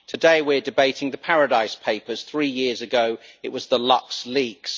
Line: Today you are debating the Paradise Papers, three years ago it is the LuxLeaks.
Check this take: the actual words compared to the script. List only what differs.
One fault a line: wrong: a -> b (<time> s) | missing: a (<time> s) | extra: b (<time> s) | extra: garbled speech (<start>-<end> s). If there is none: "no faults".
wrong: you -> we (0.4 s)
wrong: is -> was (3.5 s)